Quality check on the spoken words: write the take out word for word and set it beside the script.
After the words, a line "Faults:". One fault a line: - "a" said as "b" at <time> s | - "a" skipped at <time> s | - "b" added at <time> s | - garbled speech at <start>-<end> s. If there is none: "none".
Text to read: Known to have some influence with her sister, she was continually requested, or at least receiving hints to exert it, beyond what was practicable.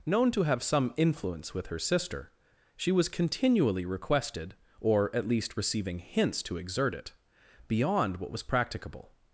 Known to have some influence with her sister, she was continually requested, or at least receiving hints to exert it, beyond what was practicable.
Faults:
none